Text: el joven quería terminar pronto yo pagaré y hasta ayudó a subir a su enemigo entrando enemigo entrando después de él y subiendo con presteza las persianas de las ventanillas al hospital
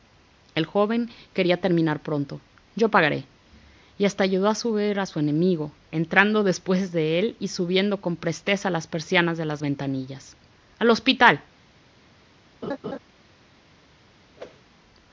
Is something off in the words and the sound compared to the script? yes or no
yes